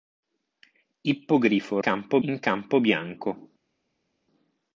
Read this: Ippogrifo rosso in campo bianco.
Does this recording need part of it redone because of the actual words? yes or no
yes